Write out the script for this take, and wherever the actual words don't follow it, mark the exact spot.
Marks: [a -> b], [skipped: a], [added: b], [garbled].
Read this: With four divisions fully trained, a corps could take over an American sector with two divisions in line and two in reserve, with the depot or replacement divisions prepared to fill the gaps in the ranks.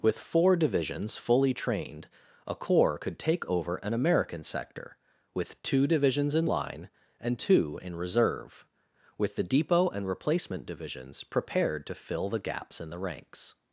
With four divisions fully trained, a corps could take over an American sector with two divisions in line and two in reserve, with the depot [or -> and] replacement divisions prepared to fill the gaps in the ranks.